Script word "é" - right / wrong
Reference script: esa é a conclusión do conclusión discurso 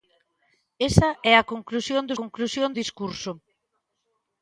right